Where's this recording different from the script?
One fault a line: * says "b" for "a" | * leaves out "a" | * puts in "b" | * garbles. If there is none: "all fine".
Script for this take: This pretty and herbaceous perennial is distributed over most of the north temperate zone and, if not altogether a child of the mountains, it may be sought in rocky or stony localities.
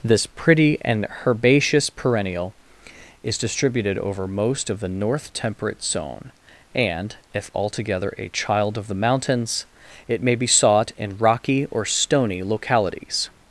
* leaves out "not"